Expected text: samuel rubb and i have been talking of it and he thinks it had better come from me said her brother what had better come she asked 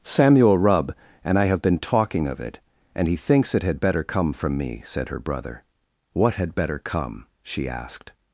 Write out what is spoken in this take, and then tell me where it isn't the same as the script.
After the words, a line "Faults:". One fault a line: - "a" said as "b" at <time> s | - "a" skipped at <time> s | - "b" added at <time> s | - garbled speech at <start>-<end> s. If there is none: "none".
samuel rubb and i have been talking of it and he thinks it had better come from me said her brother what had better come she asked
Faults:
none